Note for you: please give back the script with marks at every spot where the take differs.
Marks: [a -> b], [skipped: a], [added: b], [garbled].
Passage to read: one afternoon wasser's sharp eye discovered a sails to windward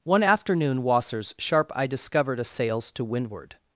one afternoon wasser's sharp eye discovered a sails to windward